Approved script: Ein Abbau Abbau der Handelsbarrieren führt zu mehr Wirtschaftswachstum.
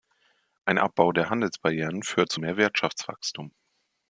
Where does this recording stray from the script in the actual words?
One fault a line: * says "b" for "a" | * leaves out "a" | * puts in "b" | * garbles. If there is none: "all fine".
* leaves out "Abbau"